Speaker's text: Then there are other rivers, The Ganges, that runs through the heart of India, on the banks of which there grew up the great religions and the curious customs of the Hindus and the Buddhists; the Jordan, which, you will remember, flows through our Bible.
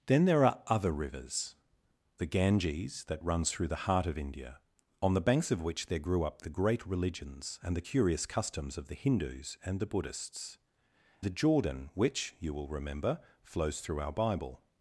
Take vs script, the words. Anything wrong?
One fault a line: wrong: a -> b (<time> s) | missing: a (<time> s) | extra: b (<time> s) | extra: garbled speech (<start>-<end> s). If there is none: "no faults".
no faults